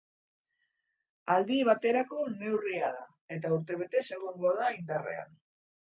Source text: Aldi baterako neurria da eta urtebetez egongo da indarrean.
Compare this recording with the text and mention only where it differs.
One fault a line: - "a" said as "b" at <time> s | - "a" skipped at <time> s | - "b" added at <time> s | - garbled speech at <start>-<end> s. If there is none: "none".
none